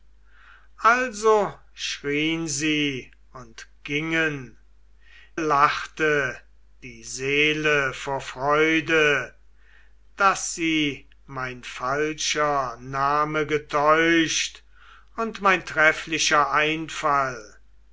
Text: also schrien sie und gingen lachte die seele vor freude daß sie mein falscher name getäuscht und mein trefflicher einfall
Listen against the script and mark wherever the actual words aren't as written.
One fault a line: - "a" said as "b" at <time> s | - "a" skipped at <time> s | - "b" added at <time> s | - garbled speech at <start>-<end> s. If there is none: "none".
none